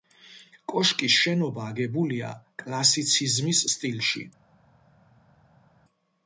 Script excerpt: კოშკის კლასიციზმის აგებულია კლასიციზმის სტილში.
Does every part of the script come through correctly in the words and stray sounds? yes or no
no